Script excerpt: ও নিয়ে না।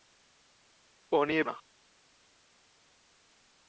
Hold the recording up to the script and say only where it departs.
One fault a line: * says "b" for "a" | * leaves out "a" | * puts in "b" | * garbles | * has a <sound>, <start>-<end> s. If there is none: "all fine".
all fine